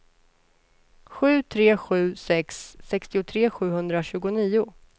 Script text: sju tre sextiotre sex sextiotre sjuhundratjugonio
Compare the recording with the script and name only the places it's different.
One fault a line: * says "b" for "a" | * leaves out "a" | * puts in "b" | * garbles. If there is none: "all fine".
* says "sju" for "sextiotre"